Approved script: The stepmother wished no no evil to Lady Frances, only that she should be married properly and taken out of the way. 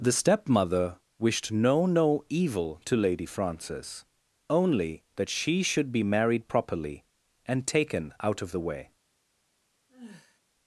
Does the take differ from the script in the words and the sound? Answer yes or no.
yes